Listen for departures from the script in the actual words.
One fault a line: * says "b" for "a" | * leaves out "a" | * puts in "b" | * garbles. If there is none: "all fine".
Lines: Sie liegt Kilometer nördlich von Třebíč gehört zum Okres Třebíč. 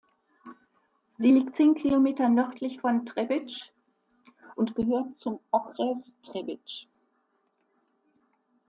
* puts in "zehn"
* puts in "und"